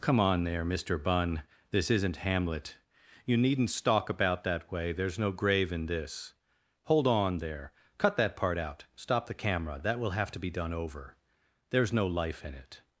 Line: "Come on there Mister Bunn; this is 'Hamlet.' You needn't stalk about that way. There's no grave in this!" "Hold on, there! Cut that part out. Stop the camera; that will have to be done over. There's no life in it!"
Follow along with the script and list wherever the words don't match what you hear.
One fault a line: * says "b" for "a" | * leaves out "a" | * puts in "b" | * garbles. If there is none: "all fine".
* says "isn't" for "is"